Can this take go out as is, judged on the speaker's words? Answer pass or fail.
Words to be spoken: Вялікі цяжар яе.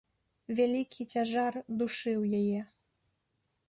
fail